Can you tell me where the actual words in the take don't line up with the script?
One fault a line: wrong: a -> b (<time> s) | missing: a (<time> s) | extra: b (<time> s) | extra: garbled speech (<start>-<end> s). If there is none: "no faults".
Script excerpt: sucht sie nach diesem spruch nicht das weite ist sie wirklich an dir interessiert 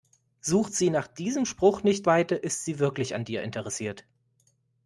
missing: das (2.1 s)